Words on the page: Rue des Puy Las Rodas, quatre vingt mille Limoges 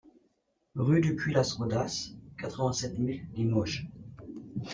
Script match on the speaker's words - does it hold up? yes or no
no